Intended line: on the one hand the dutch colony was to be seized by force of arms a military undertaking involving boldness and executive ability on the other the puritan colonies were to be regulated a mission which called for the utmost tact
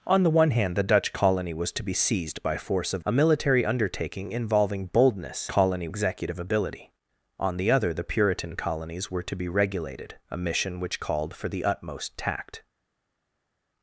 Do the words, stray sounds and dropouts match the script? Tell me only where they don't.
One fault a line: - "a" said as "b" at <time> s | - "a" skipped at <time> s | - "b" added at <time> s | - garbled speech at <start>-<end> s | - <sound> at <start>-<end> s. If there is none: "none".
- "arms" skipped at 3.0 s
- "and" said as "colony" at 5.5 s